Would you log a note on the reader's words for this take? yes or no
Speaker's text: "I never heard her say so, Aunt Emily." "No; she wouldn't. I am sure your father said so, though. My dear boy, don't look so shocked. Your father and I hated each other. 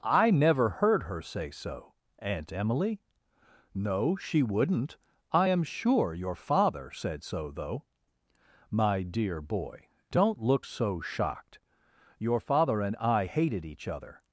no